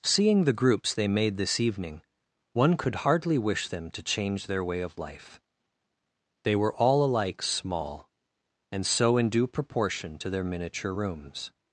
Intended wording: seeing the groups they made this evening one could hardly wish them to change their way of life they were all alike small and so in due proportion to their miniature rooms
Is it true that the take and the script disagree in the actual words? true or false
false